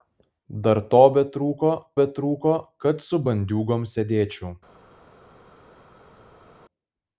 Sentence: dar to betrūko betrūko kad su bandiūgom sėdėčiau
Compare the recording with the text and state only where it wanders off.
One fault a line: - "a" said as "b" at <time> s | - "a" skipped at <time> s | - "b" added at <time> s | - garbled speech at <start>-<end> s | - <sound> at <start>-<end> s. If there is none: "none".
none